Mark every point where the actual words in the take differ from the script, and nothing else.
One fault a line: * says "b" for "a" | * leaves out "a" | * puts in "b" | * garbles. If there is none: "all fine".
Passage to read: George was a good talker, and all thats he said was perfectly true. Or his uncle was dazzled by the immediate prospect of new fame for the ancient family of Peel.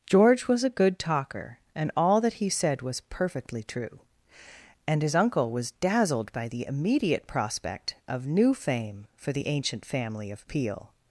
* says "that" for "thats"
* says "And" for "Or"